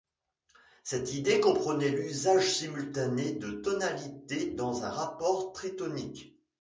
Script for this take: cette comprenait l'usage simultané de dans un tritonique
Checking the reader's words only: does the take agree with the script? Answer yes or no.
no